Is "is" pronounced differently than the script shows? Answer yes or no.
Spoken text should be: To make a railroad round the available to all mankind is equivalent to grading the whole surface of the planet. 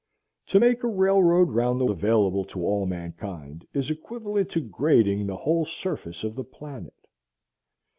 no